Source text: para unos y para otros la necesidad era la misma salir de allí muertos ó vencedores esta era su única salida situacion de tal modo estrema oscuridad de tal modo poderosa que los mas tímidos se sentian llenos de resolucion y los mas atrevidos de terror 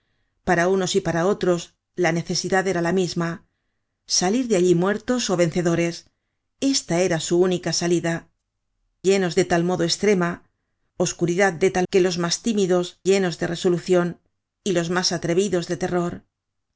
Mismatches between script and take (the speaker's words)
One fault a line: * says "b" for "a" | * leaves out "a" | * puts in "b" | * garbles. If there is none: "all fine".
* says "llenos" for "situacion"
* leaves out "modo poderosa"
* leaves out "se sentian"